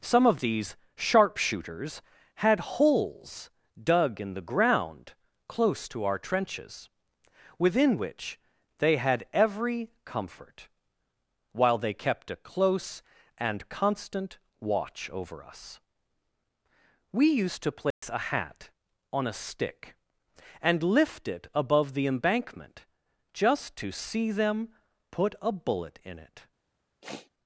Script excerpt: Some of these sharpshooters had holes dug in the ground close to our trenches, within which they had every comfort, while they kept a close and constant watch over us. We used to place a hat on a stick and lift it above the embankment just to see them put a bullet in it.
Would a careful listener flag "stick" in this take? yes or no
no